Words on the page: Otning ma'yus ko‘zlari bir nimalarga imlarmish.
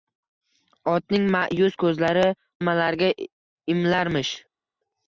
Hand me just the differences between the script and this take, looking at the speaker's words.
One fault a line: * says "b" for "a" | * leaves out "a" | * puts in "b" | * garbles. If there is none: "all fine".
* leaves out "bir"